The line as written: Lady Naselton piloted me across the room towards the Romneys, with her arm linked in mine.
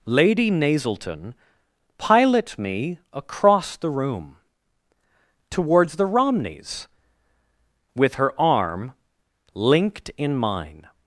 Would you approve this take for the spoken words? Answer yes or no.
no